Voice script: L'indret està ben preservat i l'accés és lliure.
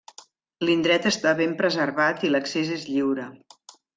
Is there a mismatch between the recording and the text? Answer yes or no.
no